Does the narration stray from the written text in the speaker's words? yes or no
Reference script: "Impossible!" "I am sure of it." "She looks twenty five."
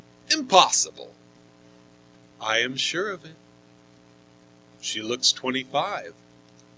no